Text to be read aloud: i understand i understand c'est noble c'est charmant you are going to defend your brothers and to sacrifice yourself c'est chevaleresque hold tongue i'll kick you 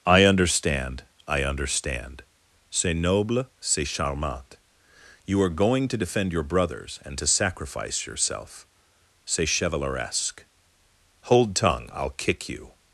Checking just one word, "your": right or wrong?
right